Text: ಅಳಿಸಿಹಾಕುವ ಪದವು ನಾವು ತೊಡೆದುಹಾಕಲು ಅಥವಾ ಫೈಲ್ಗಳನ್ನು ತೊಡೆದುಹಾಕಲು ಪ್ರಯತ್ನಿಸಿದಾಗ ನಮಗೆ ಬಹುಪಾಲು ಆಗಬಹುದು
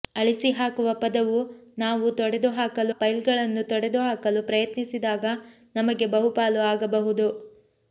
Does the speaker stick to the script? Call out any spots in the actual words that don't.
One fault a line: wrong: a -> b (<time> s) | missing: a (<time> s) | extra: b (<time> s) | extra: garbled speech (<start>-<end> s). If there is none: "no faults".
missing: ಅಥವಾ (3.0 s)